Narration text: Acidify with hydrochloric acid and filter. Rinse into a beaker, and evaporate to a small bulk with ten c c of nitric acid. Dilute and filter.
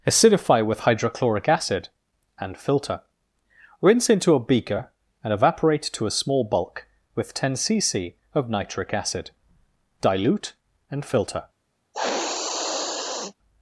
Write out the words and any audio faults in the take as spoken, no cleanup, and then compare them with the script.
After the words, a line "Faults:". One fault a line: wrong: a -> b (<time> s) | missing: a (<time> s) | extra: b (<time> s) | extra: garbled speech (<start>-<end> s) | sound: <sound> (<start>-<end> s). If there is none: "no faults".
Acidify with hydrochloric acid and filter. Rinse into a beaker, and evaporate to a small bulk with ten c c of nitric acid. Dilute and filter.
Faults:
sound: sniff (11.9-13.3 s)